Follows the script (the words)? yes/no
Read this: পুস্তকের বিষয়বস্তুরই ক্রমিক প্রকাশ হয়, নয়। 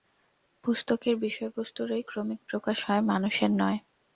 no